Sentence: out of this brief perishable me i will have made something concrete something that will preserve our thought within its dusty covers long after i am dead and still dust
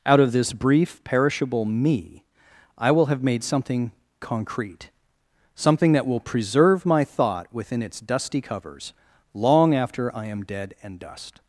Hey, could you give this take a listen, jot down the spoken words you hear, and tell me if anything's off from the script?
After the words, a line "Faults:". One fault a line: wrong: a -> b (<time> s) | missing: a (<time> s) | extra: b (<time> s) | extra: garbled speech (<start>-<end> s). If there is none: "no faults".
out of this brief perishable me i will have made something concrete something that will preserve my thought within its dusty covers long after i am dead and dust
Faults:
wrong: our -> my (6.8 s)
missing: still (11.0 s)